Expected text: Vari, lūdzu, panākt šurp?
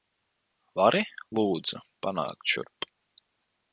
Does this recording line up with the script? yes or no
yes